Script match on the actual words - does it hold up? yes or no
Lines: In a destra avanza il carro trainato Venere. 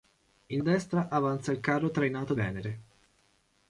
yes